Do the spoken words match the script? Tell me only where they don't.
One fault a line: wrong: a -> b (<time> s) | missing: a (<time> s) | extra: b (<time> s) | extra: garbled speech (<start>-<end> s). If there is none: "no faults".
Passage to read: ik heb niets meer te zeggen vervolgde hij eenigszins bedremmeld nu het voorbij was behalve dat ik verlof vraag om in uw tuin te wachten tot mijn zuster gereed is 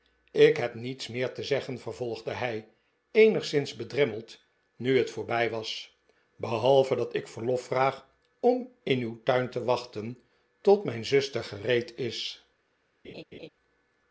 no faults